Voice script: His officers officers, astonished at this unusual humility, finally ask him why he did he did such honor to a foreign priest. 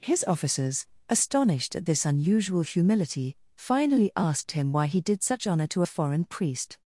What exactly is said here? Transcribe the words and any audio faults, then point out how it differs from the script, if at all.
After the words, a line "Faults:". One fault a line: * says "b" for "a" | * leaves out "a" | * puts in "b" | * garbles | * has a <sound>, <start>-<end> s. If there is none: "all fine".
His officers, astonished at this unusual humility, finally asked him why he did such honor to a foreign priest.
Faults:
* leaves out "officers"
* says "asked" for "ask"
* leaves out "he did"